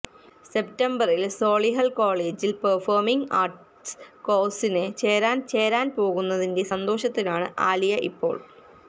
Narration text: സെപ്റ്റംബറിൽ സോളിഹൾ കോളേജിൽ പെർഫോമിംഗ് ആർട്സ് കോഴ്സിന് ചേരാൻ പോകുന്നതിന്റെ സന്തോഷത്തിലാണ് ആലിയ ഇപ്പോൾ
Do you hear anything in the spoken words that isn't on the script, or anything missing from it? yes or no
yes